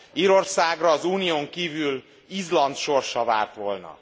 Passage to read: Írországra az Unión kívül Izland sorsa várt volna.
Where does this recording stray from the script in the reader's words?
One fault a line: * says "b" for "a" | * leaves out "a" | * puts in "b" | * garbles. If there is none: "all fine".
all fine